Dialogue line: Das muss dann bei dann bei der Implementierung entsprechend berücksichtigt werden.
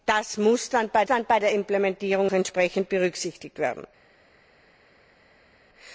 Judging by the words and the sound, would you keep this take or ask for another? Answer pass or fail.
pass